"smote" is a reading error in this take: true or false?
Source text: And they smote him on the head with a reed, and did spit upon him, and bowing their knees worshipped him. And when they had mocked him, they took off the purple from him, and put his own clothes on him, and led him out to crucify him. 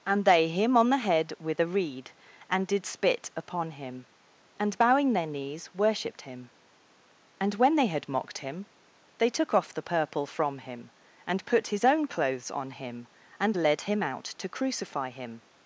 true